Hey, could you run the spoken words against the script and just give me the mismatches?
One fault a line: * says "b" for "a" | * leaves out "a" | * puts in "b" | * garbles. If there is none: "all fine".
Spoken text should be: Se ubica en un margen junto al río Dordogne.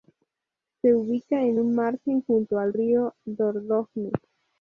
all fine